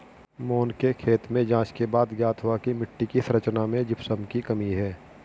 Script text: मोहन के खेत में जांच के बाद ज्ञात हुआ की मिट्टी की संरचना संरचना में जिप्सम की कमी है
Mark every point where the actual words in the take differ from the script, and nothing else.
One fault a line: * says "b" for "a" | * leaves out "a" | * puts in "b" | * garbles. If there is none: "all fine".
* leaves out "संरचना"